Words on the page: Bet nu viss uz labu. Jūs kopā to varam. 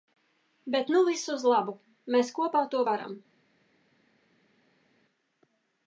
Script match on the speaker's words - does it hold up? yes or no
no